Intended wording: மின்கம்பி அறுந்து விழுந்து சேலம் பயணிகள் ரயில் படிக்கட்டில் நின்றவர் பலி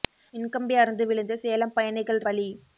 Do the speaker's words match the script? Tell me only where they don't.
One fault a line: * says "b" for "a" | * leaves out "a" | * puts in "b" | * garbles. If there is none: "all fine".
* leaves out "ரயில் படிக்கட்டில் நின்றவர்"